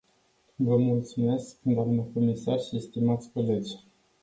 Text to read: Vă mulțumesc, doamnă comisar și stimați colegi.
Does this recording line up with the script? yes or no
yes